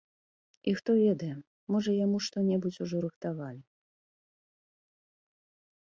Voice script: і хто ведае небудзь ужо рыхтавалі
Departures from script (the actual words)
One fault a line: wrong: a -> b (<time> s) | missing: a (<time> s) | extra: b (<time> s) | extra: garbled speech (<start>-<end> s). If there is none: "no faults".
extra: можа яму што (1.7 s)